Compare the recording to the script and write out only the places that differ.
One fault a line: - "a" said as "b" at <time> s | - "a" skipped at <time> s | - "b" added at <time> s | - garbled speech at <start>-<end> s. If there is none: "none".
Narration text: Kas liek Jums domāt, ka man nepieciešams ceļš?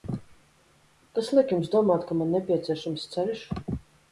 none